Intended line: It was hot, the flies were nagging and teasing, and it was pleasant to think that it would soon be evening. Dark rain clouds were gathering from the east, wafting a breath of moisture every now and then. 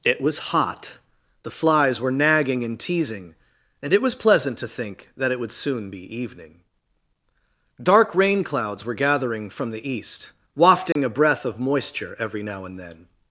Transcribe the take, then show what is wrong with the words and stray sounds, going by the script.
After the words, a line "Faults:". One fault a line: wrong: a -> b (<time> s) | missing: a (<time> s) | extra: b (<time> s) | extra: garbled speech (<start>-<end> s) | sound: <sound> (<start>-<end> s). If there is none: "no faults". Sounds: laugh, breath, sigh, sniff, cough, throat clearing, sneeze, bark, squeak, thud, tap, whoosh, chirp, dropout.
It was hot, the flies were nagging and teasing, and it was pleasant to think that it would soon be evening. Dark rain clouds were gathering from the east, wafting a breath of moisture every now and then.
Faults:
sound: dropout (10.9-11.0 s)